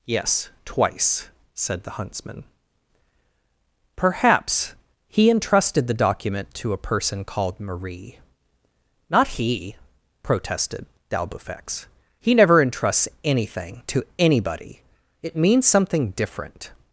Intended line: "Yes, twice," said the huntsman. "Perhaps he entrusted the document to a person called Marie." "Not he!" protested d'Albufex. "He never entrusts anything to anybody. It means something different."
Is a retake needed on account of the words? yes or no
no